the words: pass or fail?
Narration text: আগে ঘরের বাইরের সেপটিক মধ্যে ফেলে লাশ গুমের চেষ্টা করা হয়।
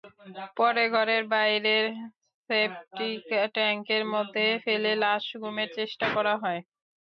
fail